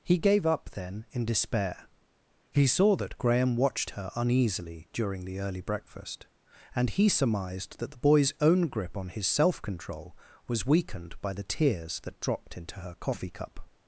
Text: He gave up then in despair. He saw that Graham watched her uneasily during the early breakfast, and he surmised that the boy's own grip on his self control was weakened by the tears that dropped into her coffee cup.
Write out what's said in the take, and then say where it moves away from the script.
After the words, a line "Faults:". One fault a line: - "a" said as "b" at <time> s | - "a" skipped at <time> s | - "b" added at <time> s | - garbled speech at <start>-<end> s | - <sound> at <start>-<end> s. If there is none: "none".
He gave up then in despair. He saw that Graham watched her uneasily during the early breakfast, and he surmised that the boy's own grip on his self control was weakened by the tears that dropped into her coffee cup.
Faults:
none